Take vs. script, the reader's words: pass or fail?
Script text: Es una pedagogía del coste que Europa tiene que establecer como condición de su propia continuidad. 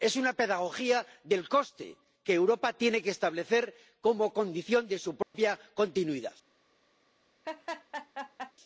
pass